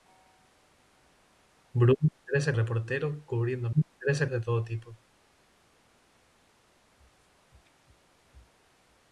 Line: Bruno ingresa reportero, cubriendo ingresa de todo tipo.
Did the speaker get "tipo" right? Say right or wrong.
right